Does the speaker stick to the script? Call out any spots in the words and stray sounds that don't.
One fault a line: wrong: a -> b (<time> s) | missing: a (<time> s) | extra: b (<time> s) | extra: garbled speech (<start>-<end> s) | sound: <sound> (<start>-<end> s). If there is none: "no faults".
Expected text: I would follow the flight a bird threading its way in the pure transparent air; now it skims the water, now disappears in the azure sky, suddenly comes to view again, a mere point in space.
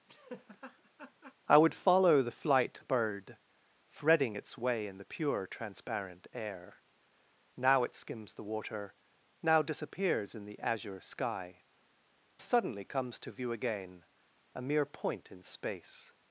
sound: laugh (0.1-1.3 s)